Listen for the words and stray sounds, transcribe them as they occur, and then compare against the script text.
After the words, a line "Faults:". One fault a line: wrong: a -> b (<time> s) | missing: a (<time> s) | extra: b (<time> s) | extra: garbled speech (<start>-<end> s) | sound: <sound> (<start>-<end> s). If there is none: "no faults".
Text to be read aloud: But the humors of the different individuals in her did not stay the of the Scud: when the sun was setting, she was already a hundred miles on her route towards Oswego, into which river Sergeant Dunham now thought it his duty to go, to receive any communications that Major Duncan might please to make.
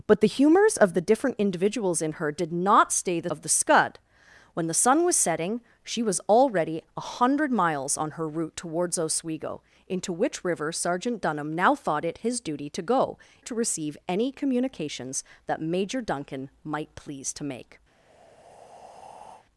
But the humors of the different individuals in her did not stay the of the Scud: when the sun was setting, she was already a hundred miles on her route towards Oswego, into which river Sergeant Dunham now thought it his duty to go, to receive any communications that Major Duncan might please to make.
Faults:
sound: breath (17.9-19.5 s)